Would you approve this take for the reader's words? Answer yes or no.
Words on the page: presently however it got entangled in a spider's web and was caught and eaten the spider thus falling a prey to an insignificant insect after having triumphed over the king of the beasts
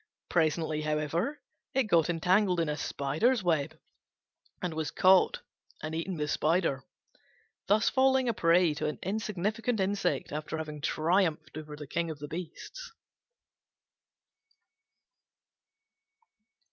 yes